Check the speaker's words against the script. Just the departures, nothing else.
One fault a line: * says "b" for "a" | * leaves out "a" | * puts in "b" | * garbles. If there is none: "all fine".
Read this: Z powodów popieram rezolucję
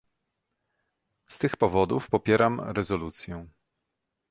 * puts in "tych"